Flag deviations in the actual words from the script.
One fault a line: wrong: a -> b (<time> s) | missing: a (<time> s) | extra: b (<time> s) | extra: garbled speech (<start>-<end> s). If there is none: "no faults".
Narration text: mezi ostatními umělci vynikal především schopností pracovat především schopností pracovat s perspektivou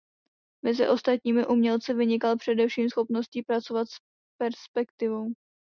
missing: především schopností pracovat (3.9 s)